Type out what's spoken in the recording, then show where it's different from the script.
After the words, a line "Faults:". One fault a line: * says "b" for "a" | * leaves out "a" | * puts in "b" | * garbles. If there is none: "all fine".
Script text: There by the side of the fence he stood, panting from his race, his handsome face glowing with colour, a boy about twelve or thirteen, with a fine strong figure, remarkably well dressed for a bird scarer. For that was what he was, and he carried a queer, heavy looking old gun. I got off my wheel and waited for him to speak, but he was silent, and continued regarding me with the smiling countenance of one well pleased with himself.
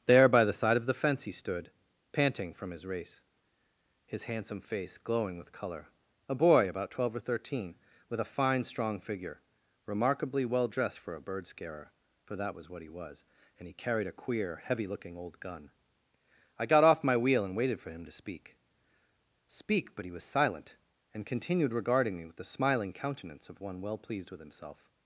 There by the side of the fence he stood, panting from his race, his handsome face glowing with colour, a boy about twelve or thirteen, with a fine strong figure, remarkably well dressed for a bird scarer. For that was what he was, and he carried a queer, heavy looking old gun. I got off my wheel and waited for him to speak speak, but he was silent, and continued regarding me with the smiling countenance of one well pleased with himself.
Faults:
* puts in "speak"